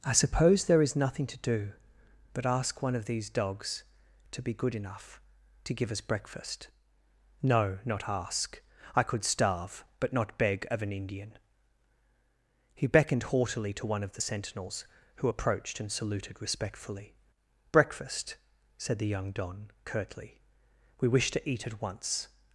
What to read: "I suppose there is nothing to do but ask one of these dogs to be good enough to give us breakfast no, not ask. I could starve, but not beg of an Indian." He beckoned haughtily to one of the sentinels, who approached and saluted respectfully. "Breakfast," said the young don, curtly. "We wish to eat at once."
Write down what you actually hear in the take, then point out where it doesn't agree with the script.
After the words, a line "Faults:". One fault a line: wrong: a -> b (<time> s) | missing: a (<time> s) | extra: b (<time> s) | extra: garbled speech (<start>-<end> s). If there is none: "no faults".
"I suppose there is nothing to do but ask one of these dogs to be good enough to give us breakfast no, not ask. I could starve, but not beg of an Indian." He beckoned haughtily to one of the sentinels, who approached and saluted respectfully. "Breakfast," said the young don, curtly. "We wish to eat at once."
Faults:
no faults